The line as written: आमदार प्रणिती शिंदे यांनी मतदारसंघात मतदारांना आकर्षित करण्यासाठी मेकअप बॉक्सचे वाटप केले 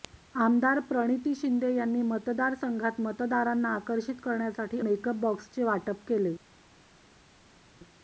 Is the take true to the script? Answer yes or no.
yes